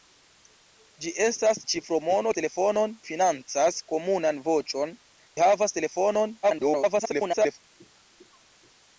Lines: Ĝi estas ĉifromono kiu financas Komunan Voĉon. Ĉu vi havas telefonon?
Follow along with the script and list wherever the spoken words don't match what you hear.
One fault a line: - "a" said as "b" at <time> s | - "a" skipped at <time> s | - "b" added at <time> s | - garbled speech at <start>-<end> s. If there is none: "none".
- "kiu" said as "telefonon" at 2.4 s
- "Ĉu" skipped at 5.0 s
- garbled speech at 6.4-7.6 s